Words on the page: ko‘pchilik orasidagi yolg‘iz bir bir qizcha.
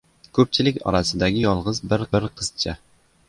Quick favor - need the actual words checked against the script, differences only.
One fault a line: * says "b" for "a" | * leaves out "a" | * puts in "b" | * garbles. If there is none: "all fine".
all fine